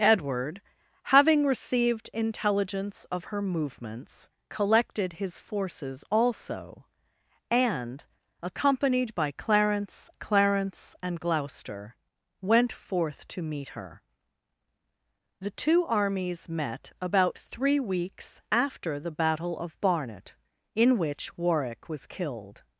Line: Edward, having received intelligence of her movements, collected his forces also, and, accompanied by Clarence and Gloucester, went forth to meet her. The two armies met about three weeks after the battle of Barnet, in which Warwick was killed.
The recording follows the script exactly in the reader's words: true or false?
false